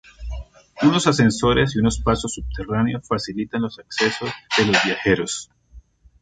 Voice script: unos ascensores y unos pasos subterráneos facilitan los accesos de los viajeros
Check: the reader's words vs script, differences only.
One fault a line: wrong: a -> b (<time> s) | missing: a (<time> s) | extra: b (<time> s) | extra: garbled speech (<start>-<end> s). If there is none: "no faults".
no faults